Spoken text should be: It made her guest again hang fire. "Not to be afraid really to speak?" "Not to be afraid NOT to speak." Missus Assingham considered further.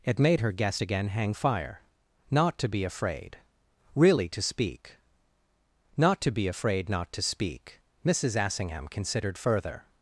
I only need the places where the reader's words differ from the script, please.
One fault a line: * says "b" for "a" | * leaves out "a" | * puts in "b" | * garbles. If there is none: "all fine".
all fine